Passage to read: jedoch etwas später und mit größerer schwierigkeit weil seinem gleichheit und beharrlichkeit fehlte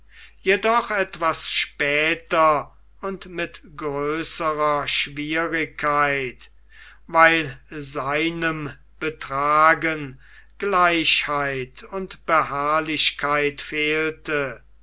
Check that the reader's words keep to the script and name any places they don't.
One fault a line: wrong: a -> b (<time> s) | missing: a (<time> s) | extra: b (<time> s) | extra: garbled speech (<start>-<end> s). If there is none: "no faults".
extra: betragen (9.0 s)